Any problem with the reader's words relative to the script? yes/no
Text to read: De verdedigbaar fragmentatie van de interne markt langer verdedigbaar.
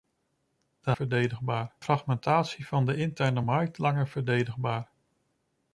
no